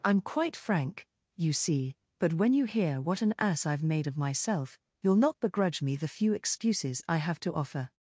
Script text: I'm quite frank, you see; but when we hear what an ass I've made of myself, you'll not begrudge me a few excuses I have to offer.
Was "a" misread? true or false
true